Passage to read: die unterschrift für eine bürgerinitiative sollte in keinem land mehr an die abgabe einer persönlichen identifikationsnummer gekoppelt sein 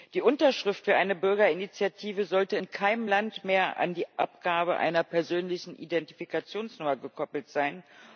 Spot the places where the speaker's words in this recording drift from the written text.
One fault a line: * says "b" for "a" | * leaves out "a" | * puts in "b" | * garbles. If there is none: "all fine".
all fine